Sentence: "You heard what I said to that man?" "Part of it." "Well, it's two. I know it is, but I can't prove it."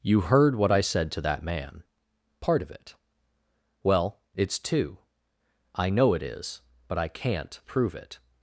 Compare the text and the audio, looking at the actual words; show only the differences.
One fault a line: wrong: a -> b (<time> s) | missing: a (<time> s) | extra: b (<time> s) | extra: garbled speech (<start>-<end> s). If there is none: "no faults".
no faults